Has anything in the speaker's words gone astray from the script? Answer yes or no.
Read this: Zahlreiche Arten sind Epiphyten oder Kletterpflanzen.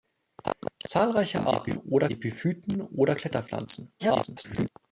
yes